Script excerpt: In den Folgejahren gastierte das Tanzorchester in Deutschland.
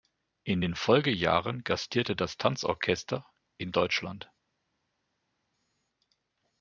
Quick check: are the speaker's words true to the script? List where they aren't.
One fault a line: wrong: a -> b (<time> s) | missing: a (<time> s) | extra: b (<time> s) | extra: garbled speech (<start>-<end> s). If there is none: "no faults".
no faults